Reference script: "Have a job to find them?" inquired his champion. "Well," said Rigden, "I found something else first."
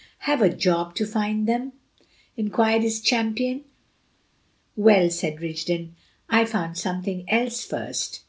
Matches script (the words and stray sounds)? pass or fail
pass